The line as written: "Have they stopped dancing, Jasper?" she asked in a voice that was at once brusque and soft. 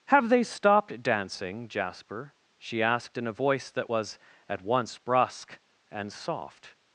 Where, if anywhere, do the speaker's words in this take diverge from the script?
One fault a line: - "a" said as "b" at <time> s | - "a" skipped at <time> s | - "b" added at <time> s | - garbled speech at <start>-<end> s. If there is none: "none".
none